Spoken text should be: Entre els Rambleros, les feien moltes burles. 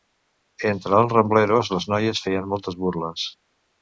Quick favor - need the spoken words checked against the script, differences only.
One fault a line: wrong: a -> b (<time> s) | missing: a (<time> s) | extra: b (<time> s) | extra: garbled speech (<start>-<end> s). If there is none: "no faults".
extra: noies (1.9 s)